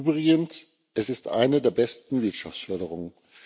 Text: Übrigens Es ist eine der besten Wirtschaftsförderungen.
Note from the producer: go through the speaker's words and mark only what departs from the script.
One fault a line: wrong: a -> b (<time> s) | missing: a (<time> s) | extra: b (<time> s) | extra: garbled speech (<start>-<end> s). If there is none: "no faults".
no faults